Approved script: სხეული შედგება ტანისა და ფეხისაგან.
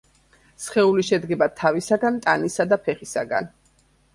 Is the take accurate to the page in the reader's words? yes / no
no